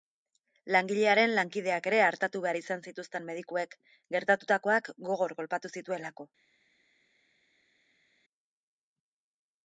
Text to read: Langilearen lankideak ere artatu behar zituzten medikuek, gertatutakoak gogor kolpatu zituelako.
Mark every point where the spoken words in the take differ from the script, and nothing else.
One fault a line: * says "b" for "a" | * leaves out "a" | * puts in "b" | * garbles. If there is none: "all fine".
* puts in "izan"